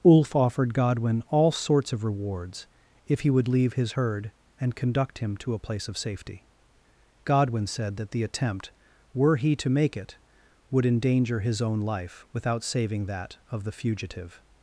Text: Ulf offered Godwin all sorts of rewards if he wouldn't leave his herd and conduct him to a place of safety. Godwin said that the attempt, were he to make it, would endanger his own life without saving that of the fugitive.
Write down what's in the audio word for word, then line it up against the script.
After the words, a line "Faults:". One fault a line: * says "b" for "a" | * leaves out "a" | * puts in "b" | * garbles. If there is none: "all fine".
Ulf offered Godwin all sorts of rewards if he would leave his herd and conduct him to a place of safety. Godwin said that the attempt, were he to make it, would endanger his own life without saving that of the fugitive.
Faults:
* says "would" for "wouldn't"